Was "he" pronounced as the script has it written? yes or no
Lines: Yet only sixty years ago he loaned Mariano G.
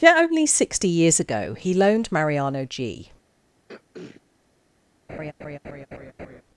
yes